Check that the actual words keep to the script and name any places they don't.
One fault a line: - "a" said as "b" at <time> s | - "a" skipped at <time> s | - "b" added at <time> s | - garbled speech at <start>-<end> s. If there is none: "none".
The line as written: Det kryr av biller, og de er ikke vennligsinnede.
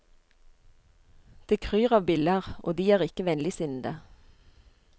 none